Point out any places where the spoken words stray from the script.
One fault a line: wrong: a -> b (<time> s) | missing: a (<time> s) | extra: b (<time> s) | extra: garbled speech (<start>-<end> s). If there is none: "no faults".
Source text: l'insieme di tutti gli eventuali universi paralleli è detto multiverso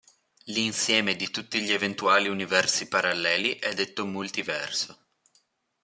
no faults